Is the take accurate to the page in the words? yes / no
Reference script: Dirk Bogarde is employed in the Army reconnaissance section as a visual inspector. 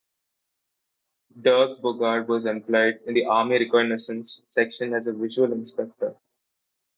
no